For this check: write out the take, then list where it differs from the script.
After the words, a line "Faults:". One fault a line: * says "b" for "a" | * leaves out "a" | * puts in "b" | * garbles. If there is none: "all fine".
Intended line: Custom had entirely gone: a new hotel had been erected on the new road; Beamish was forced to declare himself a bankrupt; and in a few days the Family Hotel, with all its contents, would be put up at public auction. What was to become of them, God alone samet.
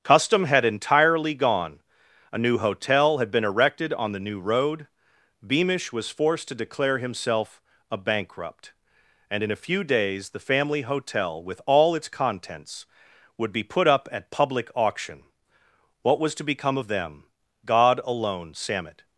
Custom had entirely gone: a new hotel had been erected on the new road; Beamish was forced to declare himself a bankrupt; and in a few days the Family Hotel, with all its contents, would be put up at public auction. What was to become of them, God alone samet.
Faults:
all fine